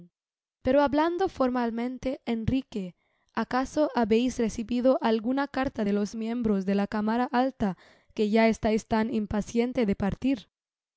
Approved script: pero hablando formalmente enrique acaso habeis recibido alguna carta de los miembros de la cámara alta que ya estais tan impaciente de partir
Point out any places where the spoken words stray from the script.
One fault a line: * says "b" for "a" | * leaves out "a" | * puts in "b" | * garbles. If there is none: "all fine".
all fine